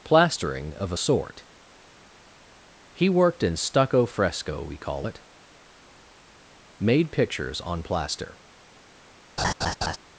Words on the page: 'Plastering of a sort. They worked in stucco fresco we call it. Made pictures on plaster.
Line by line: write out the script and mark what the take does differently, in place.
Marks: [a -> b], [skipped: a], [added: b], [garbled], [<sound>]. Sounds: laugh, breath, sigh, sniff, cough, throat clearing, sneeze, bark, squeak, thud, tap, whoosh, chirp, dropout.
'Plastering of a sort. [They -> He] worked in stucco fresco we call it. Made pictures on plaster. [laugh]